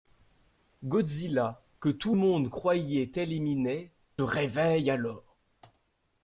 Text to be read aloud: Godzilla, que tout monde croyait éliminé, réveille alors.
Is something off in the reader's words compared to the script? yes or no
no